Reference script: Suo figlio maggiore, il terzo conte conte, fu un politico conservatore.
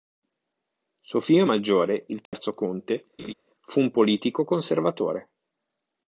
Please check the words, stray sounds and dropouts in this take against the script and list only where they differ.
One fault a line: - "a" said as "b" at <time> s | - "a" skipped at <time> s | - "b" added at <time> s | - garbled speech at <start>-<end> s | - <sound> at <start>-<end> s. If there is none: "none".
- dropout at 2.3-2.3 s
- "conte" skipped at 3.0 s
- laugh at 3.2-3.3 s